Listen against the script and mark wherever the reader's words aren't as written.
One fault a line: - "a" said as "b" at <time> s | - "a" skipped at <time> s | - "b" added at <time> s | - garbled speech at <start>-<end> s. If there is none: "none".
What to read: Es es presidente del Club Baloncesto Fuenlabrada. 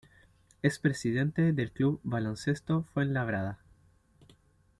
- "es" skipped at 0.8 s